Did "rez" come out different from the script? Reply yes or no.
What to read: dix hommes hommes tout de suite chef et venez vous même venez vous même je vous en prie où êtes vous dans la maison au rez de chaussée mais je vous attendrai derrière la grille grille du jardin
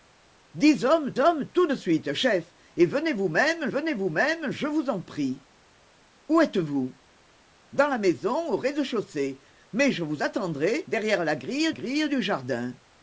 no